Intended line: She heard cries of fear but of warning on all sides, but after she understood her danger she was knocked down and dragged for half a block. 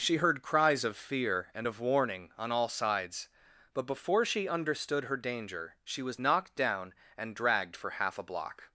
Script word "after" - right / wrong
wrong